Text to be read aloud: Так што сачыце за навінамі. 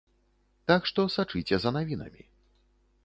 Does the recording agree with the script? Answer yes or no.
yes